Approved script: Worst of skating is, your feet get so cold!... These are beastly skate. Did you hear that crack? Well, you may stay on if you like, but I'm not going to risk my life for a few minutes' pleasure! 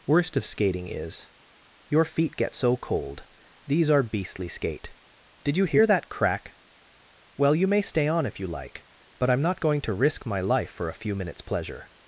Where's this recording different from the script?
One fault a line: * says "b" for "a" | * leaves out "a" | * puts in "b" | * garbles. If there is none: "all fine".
all fine